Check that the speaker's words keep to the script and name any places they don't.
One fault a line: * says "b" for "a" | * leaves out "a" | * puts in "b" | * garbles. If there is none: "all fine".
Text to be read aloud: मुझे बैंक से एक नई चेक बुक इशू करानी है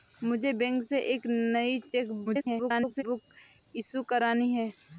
* garbles